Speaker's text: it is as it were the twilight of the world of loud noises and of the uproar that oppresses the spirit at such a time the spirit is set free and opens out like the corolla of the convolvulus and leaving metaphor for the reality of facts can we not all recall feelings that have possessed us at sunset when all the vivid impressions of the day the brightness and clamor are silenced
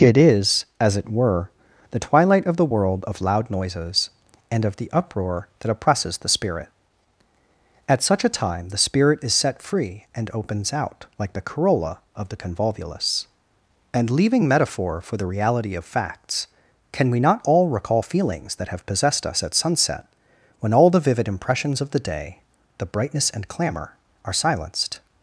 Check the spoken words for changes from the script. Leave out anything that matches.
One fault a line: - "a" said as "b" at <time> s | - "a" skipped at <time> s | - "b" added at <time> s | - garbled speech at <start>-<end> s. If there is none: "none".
none